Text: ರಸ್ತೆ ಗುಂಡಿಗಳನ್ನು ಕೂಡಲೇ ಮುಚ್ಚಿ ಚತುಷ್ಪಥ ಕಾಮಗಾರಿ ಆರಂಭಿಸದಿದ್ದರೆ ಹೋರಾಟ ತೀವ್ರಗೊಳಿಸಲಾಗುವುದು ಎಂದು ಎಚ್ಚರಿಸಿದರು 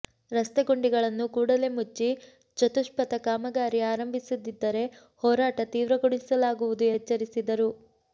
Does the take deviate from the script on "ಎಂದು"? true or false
true